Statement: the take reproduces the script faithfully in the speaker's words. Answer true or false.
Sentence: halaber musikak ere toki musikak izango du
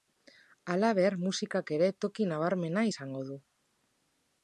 false